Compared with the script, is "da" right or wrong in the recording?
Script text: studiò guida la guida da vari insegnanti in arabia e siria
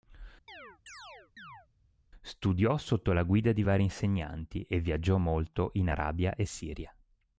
wrong